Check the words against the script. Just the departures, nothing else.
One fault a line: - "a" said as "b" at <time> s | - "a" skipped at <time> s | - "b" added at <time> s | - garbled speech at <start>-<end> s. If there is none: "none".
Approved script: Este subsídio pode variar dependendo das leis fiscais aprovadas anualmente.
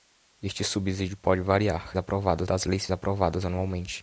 - "dependendo" said as "aprovadas" at 2.0 s
- "fiscais" skipped at 2.9 s